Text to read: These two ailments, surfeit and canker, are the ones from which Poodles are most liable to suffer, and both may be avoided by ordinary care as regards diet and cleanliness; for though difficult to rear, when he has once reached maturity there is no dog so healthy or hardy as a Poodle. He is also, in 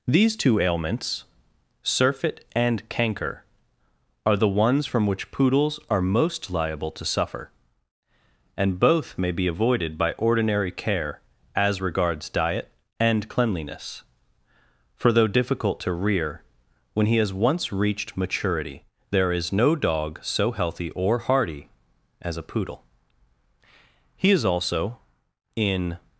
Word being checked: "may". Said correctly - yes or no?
yes